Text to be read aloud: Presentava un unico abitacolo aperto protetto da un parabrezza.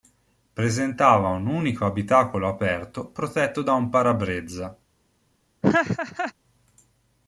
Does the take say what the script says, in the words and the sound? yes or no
no